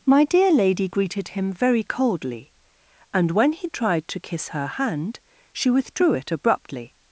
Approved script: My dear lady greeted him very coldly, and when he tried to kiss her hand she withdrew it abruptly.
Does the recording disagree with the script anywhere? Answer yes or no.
no